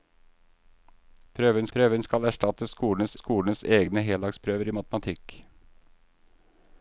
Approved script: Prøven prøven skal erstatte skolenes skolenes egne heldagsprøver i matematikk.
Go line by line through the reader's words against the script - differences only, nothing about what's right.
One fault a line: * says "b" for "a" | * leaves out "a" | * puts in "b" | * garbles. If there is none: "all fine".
all fine